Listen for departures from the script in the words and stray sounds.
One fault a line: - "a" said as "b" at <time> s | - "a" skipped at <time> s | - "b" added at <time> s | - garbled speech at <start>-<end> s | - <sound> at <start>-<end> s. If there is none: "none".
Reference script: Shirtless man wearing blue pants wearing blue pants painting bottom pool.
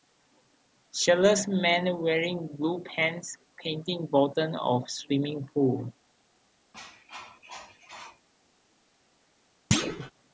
- "wearing blue pants painting bottom" said as "painting bottom of swimming" at 3.6 s
- cough at 6.7-8.3 s
- thud at 9.7-10.1 s